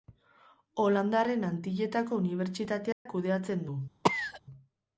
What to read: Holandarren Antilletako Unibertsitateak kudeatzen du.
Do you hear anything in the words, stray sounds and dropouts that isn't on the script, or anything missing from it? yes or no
yes